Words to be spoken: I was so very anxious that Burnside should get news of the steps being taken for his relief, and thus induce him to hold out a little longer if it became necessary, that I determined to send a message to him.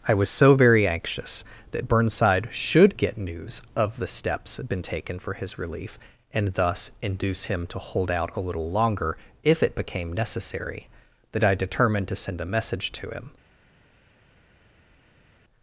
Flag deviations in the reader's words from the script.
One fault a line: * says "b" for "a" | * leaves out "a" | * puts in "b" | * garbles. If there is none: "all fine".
* says "been" for "being"